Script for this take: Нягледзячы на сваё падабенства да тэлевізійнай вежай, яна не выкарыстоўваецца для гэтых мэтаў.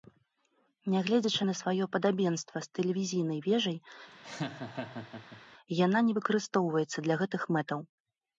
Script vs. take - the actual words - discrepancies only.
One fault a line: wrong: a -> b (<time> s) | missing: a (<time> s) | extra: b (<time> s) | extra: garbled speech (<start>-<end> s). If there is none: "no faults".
wrong: да -> з (2.7 s)